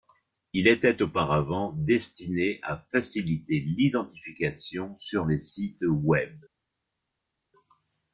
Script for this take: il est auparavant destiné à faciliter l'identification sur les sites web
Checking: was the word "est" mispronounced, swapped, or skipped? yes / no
yes